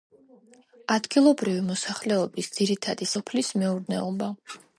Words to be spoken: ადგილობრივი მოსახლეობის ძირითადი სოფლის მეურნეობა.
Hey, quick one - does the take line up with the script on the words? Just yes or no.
yes